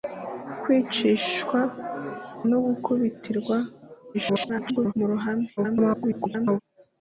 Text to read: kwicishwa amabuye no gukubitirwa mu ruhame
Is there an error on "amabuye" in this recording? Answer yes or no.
yes